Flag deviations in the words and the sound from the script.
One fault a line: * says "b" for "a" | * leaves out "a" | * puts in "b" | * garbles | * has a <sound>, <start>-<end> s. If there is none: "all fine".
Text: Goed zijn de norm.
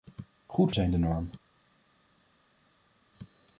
all fine